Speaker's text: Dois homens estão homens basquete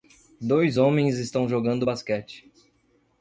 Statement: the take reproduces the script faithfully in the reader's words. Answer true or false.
false